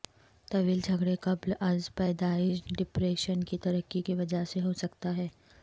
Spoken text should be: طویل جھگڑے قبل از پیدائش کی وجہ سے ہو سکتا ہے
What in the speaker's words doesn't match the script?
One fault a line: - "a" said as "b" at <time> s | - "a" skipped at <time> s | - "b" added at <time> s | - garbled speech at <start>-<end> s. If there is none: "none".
- "ڈپریشن کی ترقی" added at 2.8 s